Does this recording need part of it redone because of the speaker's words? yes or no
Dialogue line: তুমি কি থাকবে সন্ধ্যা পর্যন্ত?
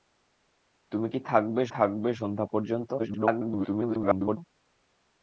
yes